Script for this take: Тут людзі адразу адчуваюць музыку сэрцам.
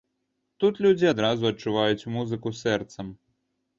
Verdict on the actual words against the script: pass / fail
pass